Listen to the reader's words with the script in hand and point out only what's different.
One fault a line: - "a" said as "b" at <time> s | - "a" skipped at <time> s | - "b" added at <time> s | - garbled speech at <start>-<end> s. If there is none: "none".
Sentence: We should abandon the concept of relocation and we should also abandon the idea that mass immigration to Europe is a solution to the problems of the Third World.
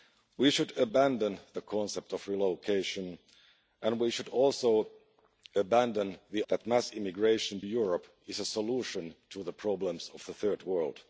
- "idea" skipped at 6.4 s
- "to" skipped at 7.6 s